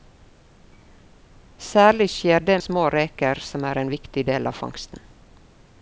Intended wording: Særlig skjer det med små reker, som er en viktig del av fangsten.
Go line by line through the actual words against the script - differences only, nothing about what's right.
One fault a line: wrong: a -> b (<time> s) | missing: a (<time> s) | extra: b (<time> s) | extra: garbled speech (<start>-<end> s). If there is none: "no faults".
missing: med (2.6 s)